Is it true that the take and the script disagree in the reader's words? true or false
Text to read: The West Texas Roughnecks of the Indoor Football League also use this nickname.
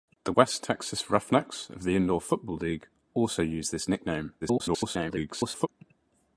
true